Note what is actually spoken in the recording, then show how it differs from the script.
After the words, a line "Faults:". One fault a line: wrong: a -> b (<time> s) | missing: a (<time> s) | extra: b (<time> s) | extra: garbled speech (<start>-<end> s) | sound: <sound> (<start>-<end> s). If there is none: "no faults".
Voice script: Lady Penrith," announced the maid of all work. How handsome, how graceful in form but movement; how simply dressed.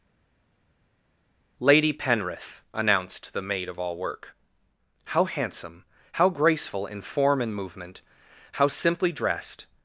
Lady Penrith," announced the maid of all work. How handsome, how graceful in form and movement; how simply dressed.
Faults:
wrong: but -> and (7.4 s)